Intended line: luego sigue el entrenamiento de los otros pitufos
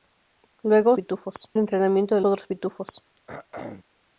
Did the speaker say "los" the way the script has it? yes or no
no